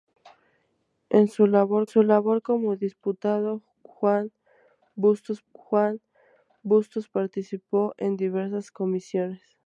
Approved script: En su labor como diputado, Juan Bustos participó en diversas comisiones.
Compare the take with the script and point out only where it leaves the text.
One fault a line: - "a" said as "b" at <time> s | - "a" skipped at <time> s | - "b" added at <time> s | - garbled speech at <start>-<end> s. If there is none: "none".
- "su labor" added at 1.8 s
- "Juan Bustos" added at 5.5 s